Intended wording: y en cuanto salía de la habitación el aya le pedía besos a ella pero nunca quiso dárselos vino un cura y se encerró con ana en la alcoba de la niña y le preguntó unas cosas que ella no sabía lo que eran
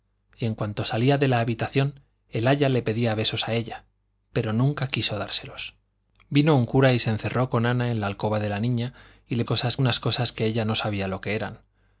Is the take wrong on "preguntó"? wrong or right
wrong